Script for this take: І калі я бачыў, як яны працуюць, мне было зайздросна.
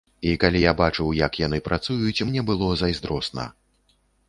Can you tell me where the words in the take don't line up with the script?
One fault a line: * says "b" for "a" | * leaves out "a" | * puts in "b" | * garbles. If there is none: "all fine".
all fine